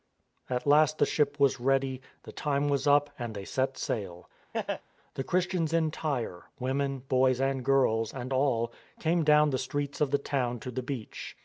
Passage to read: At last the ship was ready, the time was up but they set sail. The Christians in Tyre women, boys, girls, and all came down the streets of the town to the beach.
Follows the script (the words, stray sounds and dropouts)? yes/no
no